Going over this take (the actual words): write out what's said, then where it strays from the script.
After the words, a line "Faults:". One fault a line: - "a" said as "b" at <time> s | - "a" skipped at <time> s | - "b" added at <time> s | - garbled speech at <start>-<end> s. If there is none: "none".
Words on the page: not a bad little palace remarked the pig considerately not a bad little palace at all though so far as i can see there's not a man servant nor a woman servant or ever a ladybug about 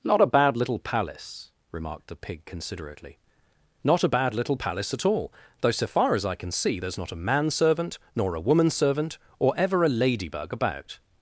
not a bad little palace remarked the pig considerately not a bad little palace at all though so far as i can see there's not a man servant nor a woman servant or ever a ladybug about
Faults:
none